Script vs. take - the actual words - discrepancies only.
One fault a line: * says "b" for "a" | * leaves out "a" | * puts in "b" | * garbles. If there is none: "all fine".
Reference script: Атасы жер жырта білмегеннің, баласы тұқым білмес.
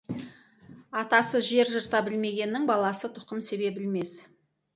* puts in "себе"